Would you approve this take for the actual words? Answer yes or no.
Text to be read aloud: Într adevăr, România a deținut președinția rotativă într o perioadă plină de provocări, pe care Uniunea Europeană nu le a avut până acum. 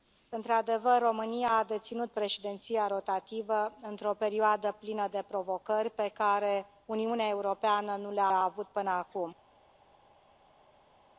no